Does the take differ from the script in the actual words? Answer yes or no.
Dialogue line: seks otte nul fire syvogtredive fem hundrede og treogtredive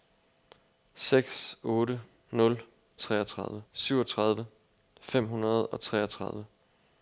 yes